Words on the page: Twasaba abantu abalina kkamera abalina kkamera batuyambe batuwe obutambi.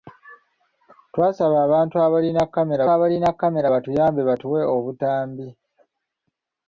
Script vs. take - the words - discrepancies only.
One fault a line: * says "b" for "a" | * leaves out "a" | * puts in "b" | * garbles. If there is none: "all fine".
all fine